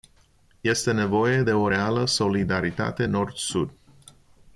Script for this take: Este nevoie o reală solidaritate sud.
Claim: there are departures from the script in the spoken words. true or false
true